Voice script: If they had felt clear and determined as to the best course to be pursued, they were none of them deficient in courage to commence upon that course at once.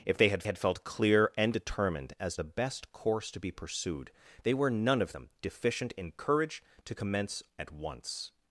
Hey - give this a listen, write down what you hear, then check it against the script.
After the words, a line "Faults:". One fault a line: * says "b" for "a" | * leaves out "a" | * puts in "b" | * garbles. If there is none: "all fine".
If they had had felt clear and determined as the best course to be pursued, they were none of them deficient in courage to commence at once.
Faults:
* puts in "had"
* leaves out "to"
* leaves out "upon that course"